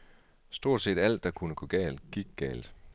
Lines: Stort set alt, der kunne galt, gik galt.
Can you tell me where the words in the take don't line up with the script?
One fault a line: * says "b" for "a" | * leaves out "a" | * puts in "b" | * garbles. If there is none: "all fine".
* puts in "gå"